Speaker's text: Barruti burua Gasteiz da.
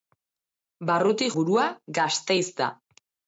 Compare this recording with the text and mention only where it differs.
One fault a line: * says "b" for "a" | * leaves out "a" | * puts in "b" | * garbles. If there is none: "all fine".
all fine